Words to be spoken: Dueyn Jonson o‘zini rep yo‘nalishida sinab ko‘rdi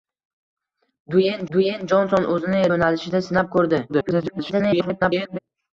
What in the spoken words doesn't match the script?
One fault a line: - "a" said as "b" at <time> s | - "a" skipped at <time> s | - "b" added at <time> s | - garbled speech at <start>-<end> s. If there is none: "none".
- "dueyn" added at 1.6 s
- "rep" skipped at 2.6 s
- garbled speech at 3.9-5.4 s